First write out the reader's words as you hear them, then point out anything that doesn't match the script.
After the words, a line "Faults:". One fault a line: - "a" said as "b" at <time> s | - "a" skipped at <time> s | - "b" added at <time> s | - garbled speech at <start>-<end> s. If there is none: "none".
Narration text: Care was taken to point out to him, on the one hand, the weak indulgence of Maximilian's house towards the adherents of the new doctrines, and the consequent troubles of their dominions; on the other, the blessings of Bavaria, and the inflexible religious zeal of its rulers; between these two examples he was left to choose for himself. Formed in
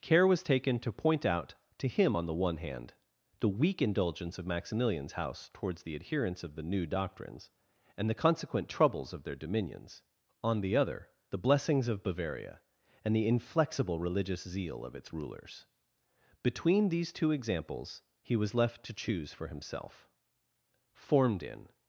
Care was taken to point out to him, on the one hand, the weak indulgence of Maximilian's house towards the adherents of the new doctrines, and the consequent troubles of their dominions; on the other, the blessings of Bavaria, and the inflexible religious zeal of its rulers; between these two examples he was left to choose for himself. Formed in
Faults:
none